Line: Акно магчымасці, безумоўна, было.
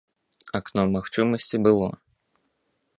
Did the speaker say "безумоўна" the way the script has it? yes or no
no